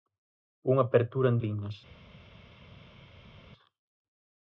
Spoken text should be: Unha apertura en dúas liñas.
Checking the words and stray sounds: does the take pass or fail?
fail